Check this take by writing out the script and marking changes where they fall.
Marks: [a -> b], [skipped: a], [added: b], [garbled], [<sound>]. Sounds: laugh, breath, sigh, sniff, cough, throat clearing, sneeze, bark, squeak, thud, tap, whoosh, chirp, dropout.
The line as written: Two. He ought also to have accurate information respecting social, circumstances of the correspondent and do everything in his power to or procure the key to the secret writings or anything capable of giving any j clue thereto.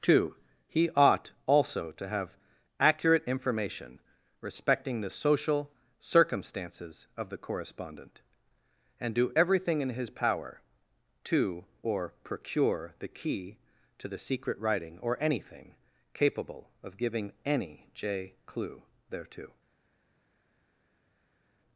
Two. He ought also to have accurate information respecting [added: the] social, circumstances of the correspondent and do everything in his power to or procure the key to the secret [writings -> writing] or anything capable of giving any j clue thereto.